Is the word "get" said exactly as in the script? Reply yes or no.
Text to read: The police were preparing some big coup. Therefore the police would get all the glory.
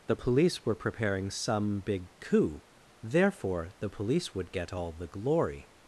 yes